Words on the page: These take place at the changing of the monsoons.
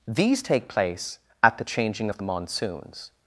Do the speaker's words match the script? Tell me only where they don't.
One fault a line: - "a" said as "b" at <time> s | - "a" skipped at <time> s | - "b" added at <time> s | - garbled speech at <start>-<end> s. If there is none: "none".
none